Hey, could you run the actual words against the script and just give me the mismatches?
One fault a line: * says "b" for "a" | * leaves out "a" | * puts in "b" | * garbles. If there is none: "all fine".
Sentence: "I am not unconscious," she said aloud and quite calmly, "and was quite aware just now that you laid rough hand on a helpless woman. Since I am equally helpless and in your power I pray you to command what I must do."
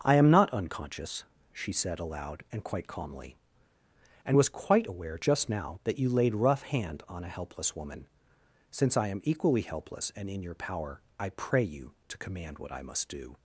all fine